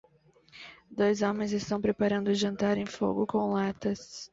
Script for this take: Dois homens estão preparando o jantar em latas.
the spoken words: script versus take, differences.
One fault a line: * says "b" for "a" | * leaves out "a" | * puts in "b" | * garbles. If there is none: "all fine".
* puts in "fogo com"